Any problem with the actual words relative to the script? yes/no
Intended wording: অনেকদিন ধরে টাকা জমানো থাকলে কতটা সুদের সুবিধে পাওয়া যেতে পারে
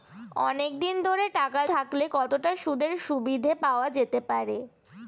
yes